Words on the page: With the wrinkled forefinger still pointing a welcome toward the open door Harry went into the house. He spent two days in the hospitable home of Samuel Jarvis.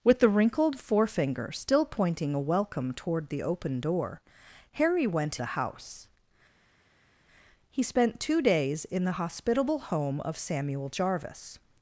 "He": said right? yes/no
yes